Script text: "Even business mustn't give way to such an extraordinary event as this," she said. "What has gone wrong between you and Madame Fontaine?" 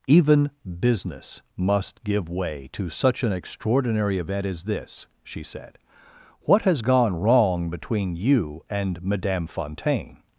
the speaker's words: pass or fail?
fail